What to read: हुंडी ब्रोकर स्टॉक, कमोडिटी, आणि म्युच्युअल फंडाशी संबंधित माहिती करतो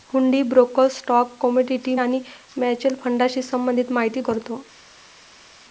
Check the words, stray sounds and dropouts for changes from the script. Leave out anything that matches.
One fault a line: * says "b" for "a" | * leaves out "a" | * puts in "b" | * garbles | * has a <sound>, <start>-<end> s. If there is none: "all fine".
all fine